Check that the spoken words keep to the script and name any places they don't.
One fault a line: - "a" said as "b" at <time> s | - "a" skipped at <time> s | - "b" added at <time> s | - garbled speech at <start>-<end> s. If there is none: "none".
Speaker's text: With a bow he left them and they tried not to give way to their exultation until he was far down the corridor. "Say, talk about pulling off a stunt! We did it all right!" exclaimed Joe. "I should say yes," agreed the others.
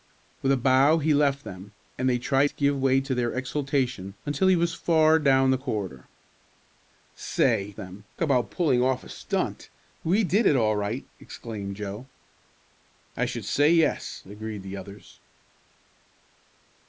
- "not" skipped at 2.5 s
- "talk" said as "them" at 7.8 s